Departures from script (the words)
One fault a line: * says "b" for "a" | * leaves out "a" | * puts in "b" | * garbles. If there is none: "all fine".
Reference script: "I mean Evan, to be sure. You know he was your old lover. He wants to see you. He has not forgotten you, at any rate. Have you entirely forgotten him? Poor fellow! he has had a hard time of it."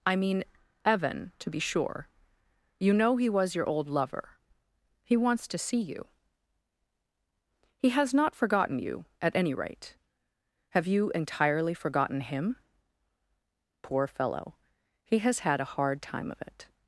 all fine